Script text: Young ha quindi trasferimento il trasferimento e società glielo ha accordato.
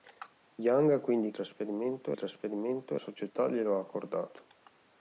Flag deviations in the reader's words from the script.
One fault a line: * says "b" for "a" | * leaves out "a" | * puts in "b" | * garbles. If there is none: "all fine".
all fine